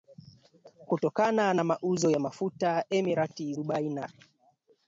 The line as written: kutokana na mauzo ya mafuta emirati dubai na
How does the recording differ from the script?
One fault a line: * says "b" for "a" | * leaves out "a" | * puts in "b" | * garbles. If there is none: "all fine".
all fine